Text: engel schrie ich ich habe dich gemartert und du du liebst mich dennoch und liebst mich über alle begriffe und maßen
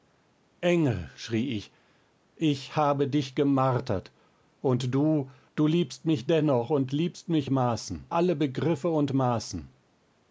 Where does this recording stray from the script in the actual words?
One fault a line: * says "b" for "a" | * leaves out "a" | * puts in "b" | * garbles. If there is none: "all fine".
* says "maßen" for "über"